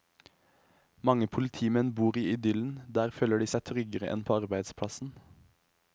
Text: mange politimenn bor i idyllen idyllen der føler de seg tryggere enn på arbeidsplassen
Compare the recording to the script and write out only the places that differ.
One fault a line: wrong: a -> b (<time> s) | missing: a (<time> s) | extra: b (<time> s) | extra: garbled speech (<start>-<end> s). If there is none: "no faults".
missing: idyllen (2.8 s)